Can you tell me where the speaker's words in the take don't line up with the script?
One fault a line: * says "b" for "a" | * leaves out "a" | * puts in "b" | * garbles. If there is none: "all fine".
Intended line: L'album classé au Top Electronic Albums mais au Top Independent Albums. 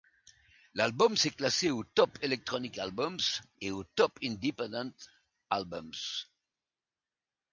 * puts in "s'est"
* says "et" for "mais"